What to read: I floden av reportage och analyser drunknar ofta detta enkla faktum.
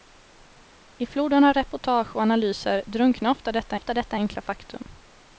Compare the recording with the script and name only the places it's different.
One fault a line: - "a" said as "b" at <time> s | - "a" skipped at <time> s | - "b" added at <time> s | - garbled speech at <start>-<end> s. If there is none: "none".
- "ofta detta" added at 3.7 s